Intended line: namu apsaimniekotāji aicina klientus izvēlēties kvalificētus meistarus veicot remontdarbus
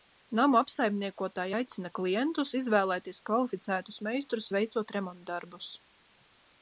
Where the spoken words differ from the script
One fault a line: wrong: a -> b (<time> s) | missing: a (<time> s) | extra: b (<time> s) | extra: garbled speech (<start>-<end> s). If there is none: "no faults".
no faults